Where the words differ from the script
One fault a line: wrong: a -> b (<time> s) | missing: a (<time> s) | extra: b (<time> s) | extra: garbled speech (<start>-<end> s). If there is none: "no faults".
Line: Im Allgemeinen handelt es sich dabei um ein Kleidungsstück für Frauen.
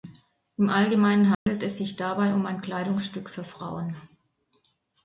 no faults